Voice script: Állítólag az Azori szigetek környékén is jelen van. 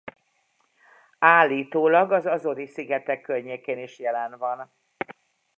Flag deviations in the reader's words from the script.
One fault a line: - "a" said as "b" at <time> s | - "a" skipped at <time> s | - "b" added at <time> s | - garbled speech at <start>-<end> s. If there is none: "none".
none